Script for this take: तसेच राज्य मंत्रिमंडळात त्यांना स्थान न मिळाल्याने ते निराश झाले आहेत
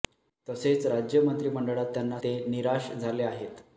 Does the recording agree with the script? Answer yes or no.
no